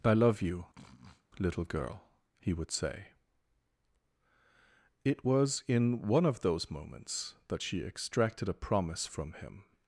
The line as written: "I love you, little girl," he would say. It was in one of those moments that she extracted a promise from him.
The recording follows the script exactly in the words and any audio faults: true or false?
false